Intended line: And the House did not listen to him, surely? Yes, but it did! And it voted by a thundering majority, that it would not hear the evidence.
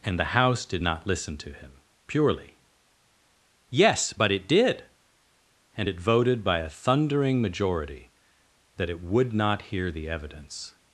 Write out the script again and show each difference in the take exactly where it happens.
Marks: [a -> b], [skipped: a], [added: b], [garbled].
And the House did not listen to him, [surely? -> purely] Yes, but it did! And it voted by a thundering majority, that it would not hear the evidence.